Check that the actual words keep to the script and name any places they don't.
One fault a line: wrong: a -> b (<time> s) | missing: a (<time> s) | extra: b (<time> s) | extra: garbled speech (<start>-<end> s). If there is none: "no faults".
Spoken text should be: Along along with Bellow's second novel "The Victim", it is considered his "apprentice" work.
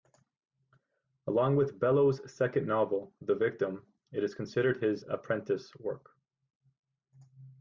missing: along (1.6 s)